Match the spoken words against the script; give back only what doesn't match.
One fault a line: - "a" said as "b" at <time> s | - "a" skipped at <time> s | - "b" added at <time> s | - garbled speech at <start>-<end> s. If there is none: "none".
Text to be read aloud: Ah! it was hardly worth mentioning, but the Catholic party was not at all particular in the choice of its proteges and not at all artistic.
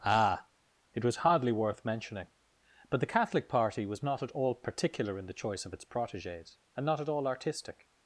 none